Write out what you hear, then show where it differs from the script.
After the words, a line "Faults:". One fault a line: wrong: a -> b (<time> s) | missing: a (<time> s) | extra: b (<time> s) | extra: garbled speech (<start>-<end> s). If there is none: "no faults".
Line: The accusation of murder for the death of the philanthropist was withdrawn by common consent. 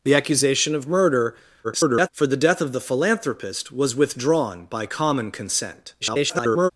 The accusation of murder [garbled] for the death of the philanthropist was withdrawn by common consent. [garbled]
Faults:
extra: garbled speech (1.6-2.1 s)
extra: garbled speech (6.0-6.7 s)